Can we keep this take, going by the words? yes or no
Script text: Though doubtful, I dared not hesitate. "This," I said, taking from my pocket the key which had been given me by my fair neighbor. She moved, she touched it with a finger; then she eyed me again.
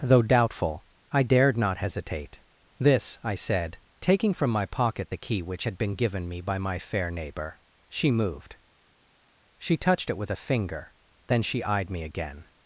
yes